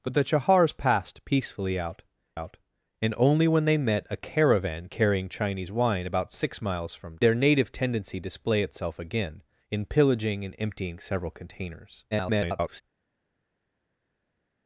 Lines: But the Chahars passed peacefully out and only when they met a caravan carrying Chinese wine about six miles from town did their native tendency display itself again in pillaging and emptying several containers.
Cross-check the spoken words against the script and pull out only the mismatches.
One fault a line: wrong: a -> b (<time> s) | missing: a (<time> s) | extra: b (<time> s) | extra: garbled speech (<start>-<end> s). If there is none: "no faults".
extra: out (2.3 s)
missing: town did (7.2 s)
extra: garbled speech (12.1-12.8 s)